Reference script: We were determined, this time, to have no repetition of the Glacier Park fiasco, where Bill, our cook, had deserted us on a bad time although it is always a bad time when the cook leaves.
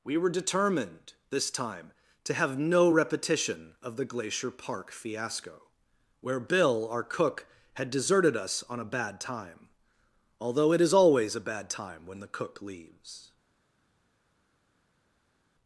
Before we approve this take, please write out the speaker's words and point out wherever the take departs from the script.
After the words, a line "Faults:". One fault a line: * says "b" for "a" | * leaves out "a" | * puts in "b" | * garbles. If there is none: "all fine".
We were determined, this time, to have no repetition of the Glacier Park fiasco, where Bill, our cook, had deserted us on a bad time although it is always a bad time when the cook leaves.
Faults:
all fine